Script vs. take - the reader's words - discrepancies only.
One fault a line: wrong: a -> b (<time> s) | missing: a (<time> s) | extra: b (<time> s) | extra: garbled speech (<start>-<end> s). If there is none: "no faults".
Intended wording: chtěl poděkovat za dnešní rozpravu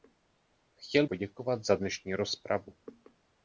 no faults